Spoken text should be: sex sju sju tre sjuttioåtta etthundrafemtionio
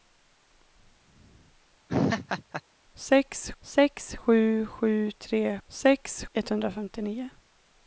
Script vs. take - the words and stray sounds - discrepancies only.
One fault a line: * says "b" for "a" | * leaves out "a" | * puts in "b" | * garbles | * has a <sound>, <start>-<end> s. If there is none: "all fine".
* has a laugh, 1.9-2.6 s
* puts in "sex"
* says "sex" for "sjuttioåtta"